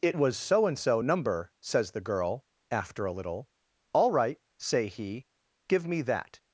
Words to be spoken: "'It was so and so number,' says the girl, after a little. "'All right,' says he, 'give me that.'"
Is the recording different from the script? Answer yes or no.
yes